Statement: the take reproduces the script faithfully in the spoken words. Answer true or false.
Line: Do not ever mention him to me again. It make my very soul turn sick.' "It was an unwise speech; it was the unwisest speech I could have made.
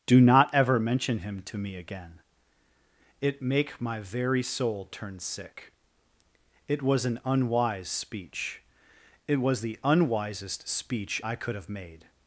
true